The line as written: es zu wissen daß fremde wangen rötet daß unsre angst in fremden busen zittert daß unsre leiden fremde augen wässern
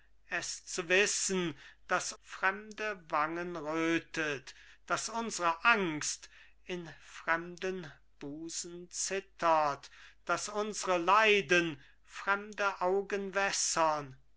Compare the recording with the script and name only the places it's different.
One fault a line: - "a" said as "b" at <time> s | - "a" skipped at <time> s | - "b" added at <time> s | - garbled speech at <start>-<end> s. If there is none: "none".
none